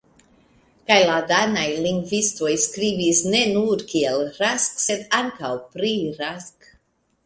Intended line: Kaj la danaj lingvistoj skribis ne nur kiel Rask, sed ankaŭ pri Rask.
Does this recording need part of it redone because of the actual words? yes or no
no